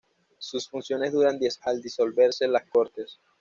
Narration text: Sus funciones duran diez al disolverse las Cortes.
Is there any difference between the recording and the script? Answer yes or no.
no